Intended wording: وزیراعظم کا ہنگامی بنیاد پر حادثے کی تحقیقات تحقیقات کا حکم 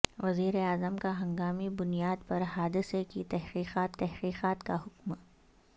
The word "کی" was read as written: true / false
true